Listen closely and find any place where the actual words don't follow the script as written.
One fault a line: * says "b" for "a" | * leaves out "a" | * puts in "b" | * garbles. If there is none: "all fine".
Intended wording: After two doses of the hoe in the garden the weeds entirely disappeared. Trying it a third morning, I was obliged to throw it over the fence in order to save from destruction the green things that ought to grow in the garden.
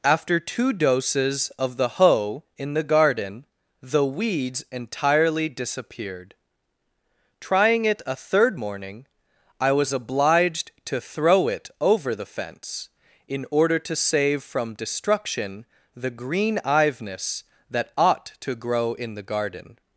* says "iveness" for "things"